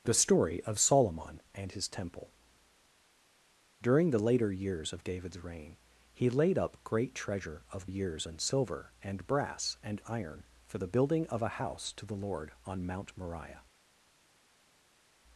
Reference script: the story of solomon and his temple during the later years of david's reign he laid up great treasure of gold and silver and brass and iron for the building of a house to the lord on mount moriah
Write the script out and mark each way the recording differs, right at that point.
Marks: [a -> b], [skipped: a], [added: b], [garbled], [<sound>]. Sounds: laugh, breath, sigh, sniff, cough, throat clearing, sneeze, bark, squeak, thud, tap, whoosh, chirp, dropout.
the story of solomon and his temple during the later years of david's reign he laid up great treasure of [gold -> years] and silver and brass and iron for the building of a house to the lord on mount moriah